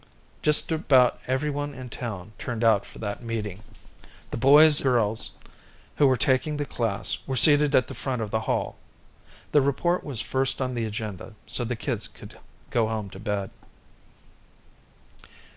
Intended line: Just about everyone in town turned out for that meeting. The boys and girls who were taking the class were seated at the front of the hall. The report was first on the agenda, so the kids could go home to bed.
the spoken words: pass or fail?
fail